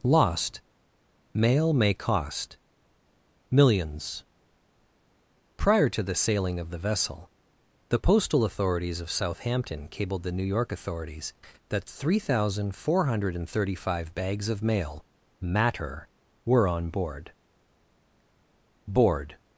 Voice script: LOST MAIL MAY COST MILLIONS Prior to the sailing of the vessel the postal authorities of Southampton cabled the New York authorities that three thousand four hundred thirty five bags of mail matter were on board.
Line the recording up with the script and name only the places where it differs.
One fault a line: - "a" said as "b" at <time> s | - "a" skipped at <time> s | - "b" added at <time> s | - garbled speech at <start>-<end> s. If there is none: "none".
- "board" added at 18.9 s